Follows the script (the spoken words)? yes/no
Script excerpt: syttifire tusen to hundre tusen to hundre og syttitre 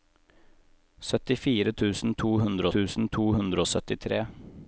yes